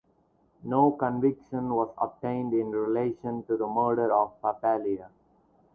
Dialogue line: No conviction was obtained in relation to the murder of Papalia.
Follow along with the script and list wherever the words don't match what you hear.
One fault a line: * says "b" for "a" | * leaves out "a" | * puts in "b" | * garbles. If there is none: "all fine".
all fine